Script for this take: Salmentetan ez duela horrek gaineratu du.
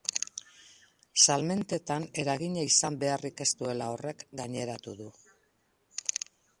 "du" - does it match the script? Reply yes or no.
yes